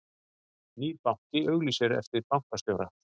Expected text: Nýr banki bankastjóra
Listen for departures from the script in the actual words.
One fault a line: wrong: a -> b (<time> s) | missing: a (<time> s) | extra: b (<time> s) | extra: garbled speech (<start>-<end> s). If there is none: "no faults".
extra: auglýsir eftir (1.5 s)